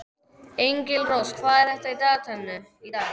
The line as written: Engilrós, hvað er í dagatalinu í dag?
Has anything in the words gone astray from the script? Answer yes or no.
no